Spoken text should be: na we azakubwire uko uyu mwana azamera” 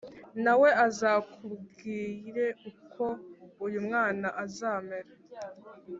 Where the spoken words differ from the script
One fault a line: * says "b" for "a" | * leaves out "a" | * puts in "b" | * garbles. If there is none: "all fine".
all fine